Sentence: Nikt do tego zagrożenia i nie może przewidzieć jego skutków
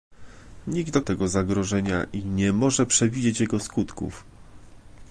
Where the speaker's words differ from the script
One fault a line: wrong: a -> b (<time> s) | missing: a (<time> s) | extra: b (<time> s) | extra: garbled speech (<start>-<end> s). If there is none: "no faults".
no faults